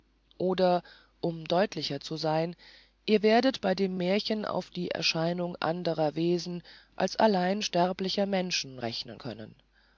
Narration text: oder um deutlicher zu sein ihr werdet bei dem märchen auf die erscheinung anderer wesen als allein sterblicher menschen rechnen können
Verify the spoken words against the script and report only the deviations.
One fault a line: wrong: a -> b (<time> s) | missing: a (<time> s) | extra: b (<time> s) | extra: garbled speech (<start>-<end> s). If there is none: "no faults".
no faults